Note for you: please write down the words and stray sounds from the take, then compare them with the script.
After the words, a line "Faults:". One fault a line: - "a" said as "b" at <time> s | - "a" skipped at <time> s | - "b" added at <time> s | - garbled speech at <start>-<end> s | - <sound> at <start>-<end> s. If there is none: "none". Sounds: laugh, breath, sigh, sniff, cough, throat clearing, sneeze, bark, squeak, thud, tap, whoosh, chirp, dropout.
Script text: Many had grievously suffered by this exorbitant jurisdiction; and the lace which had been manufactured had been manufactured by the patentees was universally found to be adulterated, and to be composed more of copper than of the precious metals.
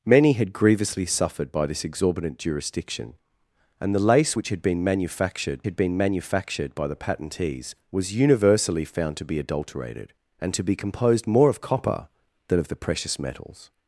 Many had grievously suffered by this exorbitant jurisdiction; and the lace which had been manufactured had been manufactured by the patentees was universally found to be adulterated, and to be composed more of copper than of the precious metals.
Faults:
none